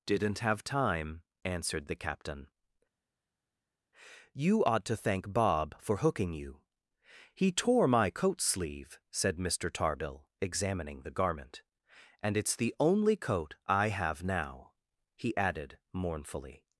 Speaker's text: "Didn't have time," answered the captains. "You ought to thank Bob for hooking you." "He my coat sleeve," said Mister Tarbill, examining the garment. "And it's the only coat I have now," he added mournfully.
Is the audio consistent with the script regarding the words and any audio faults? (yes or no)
no